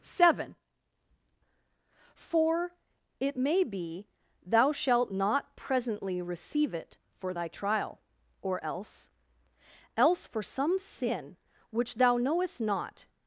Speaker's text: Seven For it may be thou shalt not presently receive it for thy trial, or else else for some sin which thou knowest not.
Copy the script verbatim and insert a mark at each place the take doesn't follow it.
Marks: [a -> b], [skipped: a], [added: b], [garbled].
Seven For it may be thou shalt not presently receive it for thy trial, or else else for some sin which thou knowest not.